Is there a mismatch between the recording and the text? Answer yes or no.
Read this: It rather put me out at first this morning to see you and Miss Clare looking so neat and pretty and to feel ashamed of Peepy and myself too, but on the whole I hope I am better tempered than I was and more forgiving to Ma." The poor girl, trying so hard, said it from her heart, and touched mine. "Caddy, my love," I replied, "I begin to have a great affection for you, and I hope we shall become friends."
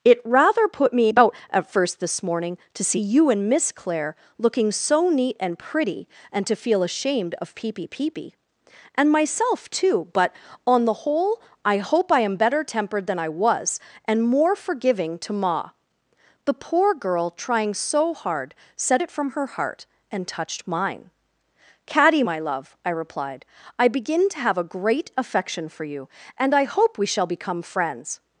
yes